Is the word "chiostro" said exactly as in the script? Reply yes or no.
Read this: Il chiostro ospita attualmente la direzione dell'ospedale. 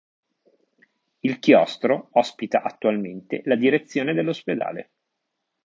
yes